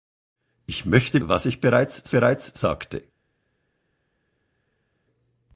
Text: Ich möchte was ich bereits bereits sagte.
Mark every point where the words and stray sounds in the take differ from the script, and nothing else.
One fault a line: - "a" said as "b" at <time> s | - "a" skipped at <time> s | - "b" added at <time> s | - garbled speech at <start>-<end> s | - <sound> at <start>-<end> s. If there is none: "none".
none